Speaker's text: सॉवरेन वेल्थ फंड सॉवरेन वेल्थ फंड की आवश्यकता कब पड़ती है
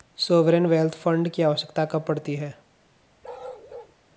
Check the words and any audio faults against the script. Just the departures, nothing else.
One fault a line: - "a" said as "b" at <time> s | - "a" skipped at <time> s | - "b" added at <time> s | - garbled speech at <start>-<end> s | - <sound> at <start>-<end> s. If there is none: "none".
- "सॉवरेन वेल्थ फंड" skipped at 1.3 s
- bark at 3.2-4.0 s